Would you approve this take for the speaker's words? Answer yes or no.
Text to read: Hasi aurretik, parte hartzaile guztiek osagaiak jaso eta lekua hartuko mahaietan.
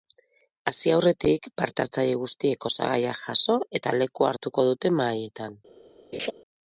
no